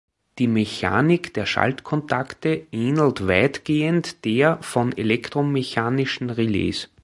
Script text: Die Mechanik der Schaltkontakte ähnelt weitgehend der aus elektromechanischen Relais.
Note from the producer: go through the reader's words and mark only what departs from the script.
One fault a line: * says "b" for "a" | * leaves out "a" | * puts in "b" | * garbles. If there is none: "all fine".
* says "von" for "aus"